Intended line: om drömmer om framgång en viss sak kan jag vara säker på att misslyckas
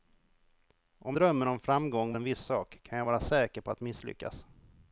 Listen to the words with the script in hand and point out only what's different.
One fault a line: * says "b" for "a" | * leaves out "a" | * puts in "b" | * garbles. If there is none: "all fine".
all fine